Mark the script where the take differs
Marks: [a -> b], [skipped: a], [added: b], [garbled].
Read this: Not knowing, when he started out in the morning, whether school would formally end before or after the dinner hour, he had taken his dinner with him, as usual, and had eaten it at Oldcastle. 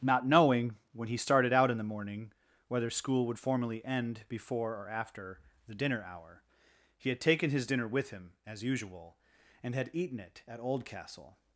Not knowing, when he started out in the morning, whether school would formally end before or after the dinner hour, he had taken his dinner with him, as usual, and had eaten it at Oldcastle.